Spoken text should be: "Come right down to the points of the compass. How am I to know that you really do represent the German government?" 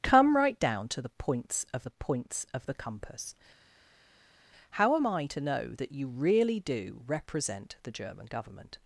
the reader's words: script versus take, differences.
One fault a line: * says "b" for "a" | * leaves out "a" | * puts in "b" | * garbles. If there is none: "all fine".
* puts in "points of the"